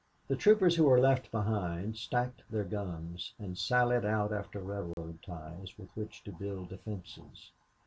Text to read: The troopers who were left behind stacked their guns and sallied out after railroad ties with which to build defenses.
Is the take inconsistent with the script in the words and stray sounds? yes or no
yes